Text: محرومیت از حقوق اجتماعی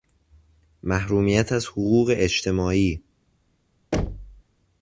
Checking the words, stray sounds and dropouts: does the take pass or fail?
fail